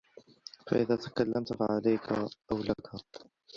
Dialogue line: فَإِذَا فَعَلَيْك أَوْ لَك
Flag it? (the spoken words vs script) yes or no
yes